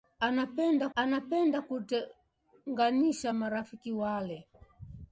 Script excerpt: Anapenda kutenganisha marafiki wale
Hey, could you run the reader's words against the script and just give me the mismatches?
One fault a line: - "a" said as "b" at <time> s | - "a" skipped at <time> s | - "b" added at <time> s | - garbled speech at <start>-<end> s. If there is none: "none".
- "anapenda" added at 0.9 s